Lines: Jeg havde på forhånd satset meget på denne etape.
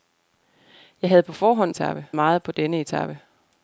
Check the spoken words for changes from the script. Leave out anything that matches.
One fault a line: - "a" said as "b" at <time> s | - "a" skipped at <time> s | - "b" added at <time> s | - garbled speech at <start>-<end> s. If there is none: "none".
- "satset" said as "etape" at 1.7 s